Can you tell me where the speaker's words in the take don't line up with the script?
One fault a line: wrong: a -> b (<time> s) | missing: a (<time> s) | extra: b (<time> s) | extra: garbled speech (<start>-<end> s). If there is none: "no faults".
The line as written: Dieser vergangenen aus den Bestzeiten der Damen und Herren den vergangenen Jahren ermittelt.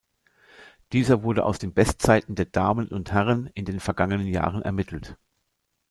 wrong: vergangenen -> wurde (1.2 s)
extra: in (3.5 s)